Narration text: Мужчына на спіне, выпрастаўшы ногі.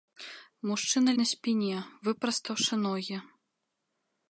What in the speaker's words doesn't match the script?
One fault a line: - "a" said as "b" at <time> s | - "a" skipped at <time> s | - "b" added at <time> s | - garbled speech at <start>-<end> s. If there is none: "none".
none